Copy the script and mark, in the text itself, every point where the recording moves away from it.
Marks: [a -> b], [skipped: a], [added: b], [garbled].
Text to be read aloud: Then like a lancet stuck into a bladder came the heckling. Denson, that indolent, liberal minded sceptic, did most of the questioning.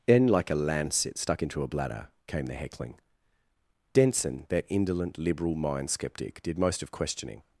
Then like a lancet stuck into a bladder came the heckling. Denson, that indolent, liberal [minded -> mind] sceptic, did most of [skipped: the] questioning.